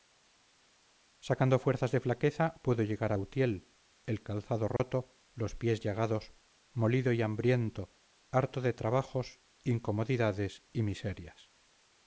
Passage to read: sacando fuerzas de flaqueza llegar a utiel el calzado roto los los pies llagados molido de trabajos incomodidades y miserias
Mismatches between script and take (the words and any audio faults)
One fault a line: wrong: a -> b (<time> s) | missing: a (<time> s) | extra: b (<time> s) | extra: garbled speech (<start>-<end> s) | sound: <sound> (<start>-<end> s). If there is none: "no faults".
extra: pudo (2.6 s)
sound: dropout (4.8-4.8 s)
missing: los (5.6 s)
extra: y hambriento harto (7.1 s)